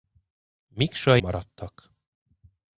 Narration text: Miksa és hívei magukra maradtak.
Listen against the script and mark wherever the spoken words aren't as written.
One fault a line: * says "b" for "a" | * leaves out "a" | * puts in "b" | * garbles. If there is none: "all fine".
* leaves out "és hívei magukra"